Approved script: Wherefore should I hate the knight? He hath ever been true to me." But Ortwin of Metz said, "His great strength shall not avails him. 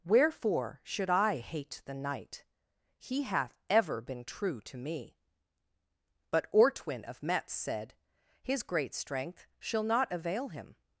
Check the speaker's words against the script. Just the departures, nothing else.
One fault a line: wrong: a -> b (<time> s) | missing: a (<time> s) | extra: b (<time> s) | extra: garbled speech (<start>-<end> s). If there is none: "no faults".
wrong: avails -> avail (10.1 s)